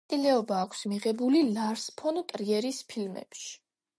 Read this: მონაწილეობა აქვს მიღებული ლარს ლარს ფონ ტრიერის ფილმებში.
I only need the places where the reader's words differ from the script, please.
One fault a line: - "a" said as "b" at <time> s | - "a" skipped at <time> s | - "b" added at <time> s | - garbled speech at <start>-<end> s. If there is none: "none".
- "ლარს" skipped at 1.9 s